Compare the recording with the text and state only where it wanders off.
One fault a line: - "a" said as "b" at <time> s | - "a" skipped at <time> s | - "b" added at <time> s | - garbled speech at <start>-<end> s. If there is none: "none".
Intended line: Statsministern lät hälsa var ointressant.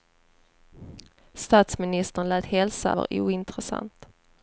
none